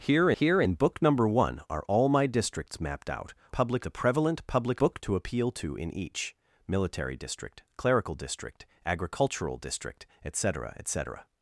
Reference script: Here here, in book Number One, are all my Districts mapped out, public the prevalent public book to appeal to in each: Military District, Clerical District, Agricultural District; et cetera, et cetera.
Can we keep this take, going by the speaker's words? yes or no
yes